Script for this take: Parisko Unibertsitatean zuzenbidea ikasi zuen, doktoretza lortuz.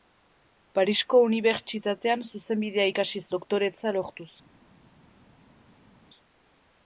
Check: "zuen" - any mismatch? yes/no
yes